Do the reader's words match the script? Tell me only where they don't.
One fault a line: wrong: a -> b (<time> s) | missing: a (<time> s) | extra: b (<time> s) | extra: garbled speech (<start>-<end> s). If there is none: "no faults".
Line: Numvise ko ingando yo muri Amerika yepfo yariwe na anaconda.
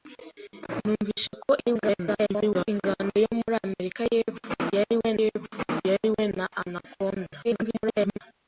extra: garbled speech (1.6-2.7 s)
extra: yepfo yariwe (5.2 s)
extra: garbled speech (7.4-8.2 s)